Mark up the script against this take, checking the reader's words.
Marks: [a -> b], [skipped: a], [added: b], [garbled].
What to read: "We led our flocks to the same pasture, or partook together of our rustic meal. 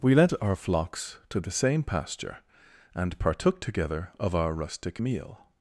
"We led our flocks to the same pasture, [or -> and] partook together of our rustic meal.